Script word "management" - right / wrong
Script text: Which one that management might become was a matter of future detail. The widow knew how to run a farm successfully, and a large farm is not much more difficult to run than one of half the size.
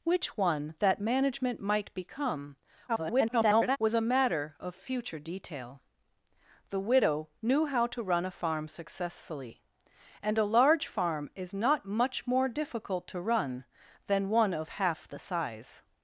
right